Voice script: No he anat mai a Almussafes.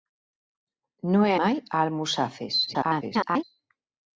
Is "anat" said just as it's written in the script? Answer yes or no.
no